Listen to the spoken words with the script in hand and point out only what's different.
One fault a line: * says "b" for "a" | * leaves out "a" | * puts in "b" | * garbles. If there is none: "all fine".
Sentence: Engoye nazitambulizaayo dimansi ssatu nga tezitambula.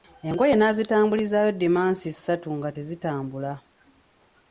all fine